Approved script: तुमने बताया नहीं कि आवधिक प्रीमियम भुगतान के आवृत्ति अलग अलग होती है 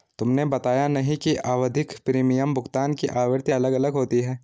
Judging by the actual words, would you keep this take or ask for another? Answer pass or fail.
fail